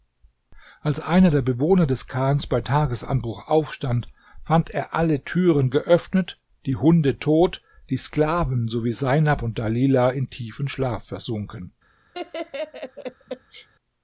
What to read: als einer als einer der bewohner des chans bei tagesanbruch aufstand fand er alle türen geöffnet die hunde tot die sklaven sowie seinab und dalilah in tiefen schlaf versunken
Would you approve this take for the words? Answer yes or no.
no